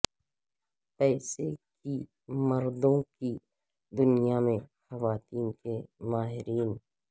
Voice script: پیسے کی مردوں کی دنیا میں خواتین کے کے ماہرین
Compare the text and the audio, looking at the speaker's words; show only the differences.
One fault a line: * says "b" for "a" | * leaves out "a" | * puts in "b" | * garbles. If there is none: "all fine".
* leaves out "کے"